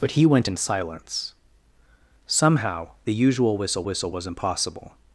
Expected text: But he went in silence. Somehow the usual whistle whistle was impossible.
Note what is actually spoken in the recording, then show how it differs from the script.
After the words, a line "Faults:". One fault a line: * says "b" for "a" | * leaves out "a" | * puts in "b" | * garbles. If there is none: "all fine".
But he went in silence. Somehow the usual whistle whistle was impossible.
Faults:
all fine